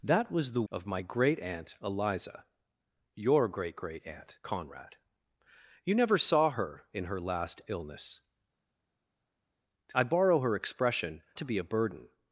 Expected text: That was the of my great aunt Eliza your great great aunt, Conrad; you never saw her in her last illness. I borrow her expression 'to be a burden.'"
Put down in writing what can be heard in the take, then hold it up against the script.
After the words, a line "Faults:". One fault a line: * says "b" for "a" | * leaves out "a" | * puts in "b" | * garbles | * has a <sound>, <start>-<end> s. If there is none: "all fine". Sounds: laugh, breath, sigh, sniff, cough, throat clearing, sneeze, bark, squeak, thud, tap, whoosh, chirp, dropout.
That was the of my great aunt Eliza your great great aunt, Conrad; you never saw her in her last illness. I borrow her expression 'to be a burden.'"
Faults:
all fine